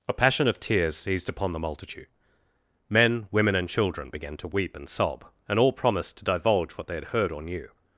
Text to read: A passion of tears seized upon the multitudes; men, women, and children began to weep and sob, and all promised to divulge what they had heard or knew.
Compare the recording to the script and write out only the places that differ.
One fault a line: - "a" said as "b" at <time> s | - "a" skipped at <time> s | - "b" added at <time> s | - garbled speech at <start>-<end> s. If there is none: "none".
- "multitudes" said as "multitude" at 1.6 s